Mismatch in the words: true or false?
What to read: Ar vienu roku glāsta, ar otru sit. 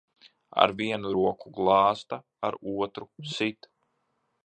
false